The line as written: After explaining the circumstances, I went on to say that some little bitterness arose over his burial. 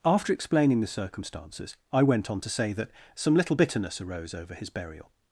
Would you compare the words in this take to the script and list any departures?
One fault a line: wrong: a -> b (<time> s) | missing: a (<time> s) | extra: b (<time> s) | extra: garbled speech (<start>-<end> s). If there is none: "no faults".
no faults